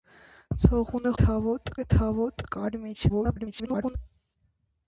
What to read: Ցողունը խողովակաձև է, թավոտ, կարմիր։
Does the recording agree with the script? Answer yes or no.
no